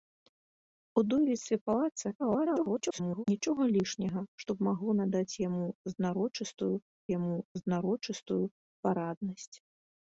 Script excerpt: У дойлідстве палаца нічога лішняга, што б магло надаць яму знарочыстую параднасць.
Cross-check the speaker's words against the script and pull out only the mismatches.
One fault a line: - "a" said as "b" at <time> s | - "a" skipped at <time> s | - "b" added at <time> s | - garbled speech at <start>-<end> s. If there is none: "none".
- garbled speech at 2.2-3.2 s
- "яму знарочыстую" added at 7.2 s